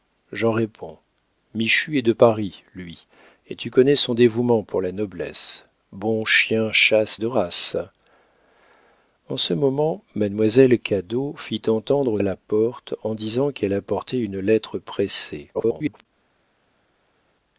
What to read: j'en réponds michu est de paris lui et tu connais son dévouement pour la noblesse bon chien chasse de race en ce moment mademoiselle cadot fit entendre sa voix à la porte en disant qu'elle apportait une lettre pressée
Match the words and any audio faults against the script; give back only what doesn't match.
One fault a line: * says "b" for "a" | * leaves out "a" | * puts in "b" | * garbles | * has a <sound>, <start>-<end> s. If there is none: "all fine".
* leaves out "sa voix"
* garbles